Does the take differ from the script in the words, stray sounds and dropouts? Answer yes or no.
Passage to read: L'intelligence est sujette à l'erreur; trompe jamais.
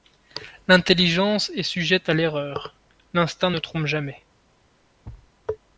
yes